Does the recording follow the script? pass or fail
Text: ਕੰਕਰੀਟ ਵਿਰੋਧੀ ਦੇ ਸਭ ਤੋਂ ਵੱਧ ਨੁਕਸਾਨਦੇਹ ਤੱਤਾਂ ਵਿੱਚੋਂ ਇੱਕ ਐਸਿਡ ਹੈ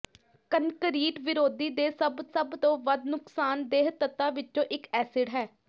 fail